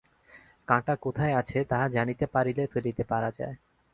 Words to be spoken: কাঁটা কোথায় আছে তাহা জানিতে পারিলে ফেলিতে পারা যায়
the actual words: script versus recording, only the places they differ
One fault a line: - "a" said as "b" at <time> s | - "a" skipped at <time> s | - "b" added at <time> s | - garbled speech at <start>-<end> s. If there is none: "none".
none